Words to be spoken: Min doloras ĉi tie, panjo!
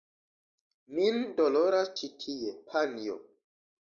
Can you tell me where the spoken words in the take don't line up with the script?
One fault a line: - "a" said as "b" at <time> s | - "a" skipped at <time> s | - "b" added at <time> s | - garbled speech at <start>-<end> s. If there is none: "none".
none